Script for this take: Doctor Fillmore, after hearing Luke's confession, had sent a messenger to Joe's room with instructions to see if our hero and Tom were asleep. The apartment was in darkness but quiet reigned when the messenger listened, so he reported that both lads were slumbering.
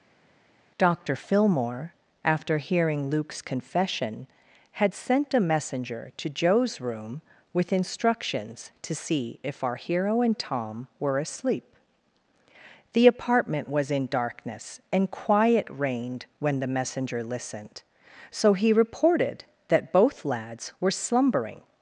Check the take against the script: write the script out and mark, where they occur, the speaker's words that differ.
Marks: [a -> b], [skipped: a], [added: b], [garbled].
Doctor Fillmore, after hearing Luke's confession, had sent a messenger to Joe's room with instructions to see if our hero and Tom were asleep. The apartment was in darkness [but -> and] quiet reigned when the messenger listened, so he reported that both lads were slumbering.